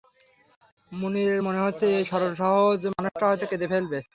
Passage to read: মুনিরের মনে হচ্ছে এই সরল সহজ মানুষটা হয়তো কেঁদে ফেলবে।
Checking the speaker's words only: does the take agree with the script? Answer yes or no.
yes